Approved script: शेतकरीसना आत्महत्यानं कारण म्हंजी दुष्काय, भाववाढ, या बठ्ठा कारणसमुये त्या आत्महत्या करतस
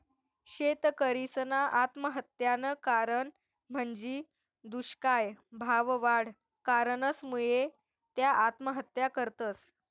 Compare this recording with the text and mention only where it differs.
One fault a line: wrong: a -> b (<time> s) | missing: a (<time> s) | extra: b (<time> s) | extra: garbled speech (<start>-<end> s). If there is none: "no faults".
missing: या बठ्ठा (6.3 s)